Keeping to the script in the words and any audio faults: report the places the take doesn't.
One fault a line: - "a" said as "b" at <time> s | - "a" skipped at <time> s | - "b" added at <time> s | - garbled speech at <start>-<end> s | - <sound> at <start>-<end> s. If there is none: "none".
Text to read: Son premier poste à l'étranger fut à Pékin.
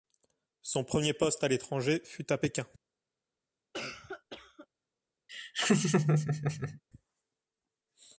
- cough at 3.7-4.7 s
- laugh at 5.3-6.8 s